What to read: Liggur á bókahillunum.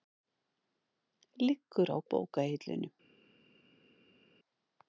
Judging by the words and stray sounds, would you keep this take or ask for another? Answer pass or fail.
pass